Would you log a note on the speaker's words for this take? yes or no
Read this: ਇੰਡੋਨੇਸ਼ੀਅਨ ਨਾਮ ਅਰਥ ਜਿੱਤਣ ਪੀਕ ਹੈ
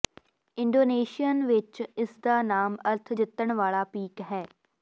yes